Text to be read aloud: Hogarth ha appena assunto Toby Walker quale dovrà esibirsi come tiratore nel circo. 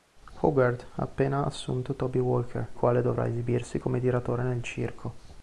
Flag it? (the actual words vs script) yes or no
no